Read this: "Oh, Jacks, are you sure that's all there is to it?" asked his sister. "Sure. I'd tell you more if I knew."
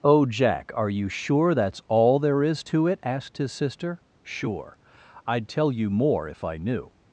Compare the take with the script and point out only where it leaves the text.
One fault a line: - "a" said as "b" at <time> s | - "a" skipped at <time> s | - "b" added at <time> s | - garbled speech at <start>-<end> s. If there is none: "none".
- "Jacks" said as "Jack" at 0.2 s